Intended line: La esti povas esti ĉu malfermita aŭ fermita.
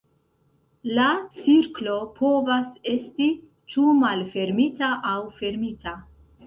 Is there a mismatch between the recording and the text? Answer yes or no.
yes